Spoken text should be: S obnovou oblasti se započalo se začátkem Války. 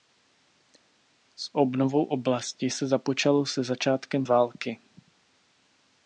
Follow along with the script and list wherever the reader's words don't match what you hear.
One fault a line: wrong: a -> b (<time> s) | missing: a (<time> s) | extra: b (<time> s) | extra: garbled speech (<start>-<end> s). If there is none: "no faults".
no faults